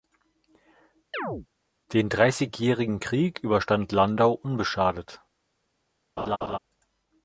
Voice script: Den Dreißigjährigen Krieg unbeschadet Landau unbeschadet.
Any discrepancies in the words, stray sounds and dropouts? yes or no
yes